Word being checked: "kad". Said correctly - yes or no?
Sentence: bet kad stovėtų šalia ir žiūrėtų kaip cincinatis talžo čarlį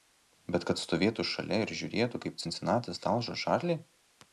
yes